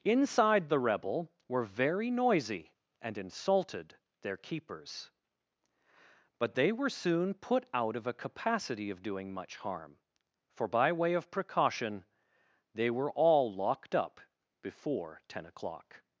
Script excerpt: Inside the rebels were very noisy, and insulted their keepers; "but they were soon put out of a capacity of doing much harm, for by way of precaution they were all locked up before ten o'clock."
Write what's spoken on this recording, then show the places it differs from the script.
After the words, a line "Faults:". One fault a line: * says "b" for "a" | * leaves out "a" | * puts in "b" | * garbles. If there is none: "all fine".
Inside the rebel were very noisy, and insulted their keepers; "but they were soon put out of a capacity of doing much harm, for by way of precaution they were all locked up before ten o'clock."
Faults:
* says "rebel" for "rebels"